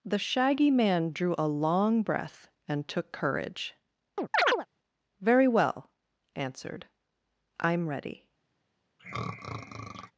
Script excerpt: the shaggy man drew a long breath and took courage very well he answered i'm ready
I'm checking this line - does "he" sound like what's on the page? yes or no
no